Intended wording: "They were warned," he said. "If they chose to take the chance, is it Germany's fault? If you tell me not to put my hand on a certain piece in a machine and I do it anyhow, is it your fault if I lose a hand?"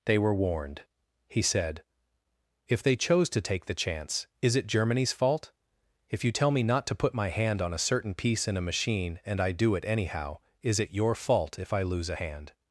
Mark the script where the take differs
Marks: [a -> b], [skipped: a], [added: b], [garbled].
"They were warned," he said. "If they chose to take the chance, is it Germany's fault? If you tell me not to put my hand on a certain piece in a machine and I do it anyhow, is it your fault if I lose a hand?"